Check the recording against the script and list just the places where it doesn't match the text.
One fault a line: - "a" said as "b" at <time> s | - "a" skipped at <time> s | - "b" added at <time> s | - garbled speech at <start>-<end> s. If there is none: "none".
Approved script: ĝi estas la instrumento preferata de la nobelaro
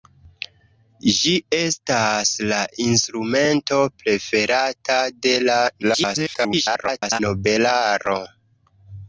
- garbled speech at 5.8-7.2 s